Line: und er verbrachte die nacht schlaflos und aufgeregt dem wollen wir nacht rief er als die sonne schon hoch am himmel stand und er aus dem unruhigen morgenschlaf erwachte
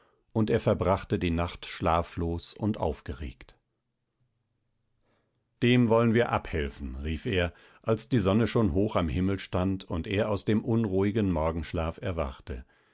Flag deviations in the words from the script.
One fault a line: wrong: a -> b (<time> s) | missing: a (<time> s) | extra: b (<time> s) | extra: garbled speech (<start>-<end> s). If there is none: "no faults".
wrong: nacht -> abhelfen (6.3 s)